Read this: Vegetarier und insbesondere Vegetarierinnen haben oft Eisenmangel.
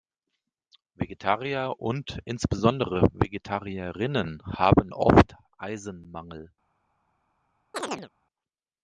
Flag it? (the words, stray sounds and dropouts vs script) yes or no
yes